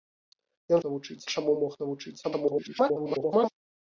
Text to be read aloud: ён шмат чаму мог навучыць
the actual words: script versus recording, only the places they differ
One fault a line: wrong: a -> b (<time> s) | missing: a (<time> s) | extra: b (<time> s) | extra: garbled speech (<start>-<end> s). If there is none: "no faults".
wrong: шмат -> навучыць (0.9 s)
extra: garbled speech (2.2-3.5 s)